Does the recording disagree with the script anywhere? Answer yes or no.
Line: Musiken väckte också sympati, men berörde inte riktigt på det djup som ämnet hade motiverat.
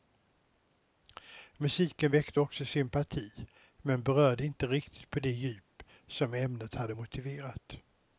no